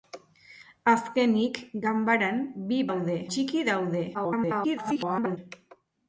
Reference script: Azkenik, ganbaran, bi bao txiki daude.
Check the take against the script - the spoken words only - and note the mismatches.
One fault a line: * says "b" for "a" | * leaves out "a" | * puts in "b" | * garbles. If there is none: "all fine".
* says "daude" for "bao"
* garbles